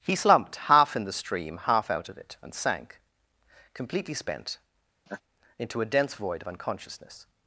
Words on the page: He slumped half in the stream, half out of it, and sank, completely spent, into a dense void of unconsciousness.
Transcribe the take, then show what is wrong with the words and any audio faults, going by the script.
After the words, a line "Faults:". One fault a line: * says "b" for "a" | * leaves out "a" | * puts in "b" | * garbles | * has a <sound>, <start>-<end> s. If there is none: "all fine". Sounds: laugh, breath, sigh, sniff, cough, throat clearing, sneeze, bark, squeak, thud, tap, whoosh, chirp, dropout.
He slumped half in the stream, half out of it, and sank, completely spent, into a dense void of unconsciousness.
Faults:
* has a laugh, 5.1-5.2 s